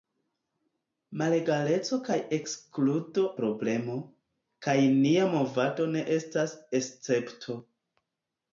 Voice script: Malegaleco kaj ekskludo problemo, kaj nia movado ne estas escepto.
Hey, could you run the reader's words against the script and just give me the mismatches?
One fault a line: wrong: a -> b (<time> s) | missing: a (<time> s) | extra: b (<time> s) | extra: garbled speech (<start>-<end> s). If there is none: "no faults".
no faults